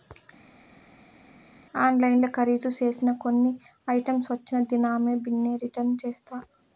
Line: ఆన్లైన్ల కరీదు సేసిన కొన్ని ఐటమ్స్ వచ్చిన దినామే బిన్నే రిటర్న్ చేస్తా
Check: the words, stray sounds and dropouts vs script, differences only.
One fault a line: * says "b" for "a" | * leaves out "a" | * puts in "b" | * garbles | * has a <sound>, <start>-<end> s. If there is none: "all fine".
all fine